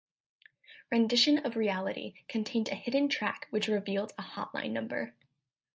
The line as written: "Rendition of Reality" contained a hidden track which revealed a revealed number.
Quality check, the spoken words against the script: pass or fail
fail